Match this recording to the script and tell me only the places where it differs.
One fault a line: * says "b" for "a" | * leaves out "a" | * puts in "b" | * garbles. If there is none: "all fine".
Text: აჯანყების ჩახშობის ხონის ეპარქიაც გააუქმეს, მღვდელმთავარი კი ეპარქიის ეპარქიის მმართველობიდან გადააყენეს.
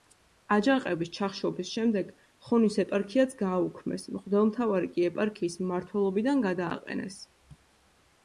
* puts in "შემდეგ"
* leaves out "ეპარქიის"